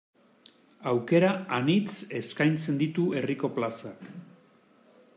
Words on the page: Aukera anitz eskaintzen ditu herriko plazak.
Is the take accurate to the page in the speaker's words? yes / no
yes